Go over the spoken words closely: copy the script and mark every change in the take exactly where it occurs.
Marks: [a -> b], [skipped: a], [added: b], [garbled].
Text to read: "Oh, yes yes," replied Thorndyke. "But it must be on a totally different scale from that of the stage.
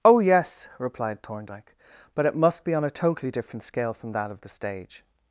"Oh, yes [skipped: yes,"] replied Thorndyke. "But it must be on a totally different scale from that of the stage.